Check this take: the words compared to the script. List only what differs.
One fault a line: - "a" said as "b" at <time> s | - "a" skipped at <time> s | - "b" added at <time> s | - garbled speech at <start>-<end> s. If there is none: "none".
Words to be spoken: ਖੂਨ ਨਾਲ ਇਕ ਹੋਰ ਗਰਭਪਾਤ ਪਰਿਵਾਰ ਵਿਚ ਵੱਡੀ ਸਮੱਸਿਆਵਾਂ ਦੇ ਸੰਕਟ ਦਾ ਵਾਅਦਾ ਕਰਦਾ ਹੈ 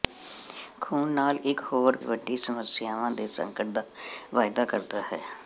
- "ਗਰਭਪਾਤ ਪਰਿਵਾਰ ਵਿਚ" skipped at 2.0 s